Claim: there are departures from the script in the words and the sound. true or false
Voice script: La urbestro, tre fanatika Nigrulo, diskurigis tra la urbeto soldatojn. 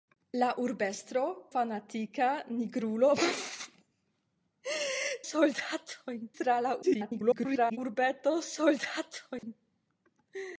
true